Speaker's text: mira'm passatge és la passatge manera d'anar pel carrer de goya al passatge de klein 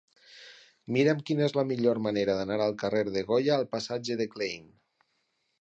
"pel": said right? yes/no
no